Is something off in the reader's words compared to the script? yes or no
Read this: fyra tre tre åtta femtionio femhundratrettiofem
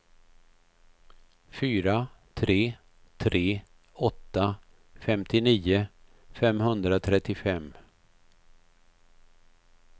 no